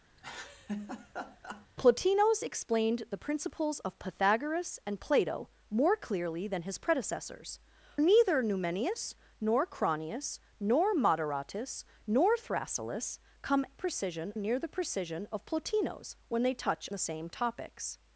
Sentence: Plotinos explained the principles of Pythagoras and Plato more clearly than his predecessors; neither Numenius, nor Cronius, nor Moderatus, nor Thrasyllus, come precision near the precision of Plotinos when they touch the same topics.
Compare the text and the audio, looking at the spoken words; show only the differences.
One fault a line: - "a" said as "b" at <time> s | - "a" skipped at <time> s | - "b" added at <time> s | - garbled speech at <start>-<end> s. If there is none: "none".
none